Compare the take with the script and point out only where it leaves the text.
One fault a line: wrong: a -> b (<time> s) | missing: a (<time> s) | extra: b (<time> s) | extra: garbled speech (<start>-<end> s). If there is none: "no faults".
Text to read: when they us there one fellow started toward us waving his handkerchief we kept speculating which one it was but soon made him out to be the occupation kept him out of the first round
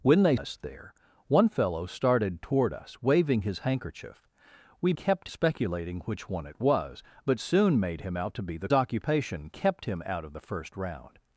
no faults